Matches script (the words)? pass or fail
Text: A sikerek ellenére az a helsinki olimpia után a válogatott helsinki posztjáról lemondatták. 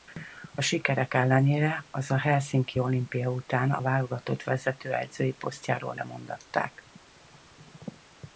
fail